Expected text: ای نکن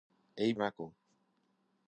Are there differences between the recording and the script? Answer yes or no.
no